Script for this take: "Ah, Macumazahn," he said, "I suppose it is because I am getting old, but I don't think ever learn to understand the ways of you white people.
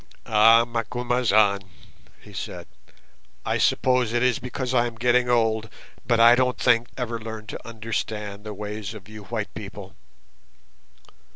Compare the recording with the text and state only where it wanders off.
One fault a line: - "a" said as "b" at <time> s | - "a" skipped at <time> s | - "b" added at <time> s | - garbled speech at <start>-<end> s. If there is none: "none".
none